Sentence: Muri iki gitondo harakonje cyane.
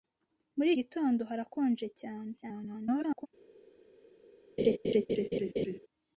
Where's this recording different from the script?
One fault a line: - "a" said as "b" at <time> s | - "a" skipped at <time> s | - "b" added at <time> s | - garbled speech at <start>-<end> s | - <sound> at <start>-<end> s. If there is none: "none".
- "iki" skipped at 0.7 s
- garbled speech at 2.4-3.3 s
- laugh at 4.6-5.8 s